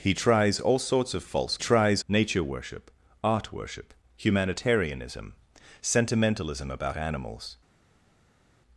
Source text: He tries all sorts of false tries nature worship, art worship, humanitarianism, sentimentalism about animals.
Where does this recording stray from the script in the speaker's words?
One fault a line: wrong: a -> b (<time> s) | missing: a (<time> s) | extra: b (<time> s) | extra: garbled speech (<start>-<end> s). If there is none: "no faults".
no faults